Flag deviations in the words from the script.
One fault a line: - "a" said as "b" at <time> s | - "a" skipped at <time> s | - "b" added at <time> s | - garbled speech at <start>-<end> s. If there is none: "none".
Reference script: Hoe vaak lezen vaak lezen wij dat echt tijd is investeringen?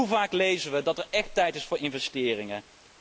- "vaak lezen" skipped at 0.7 s
- "het" added at 1.0 s
- "voor" added at 1.6 s